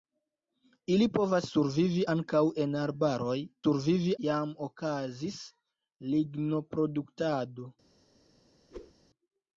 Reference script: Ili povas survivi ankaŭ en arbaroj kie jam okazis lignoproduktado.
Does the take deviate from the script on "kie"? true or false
true